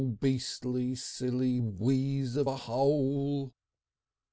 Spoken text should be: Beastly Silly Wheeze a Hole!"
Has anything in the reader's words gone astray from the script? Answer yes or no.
yes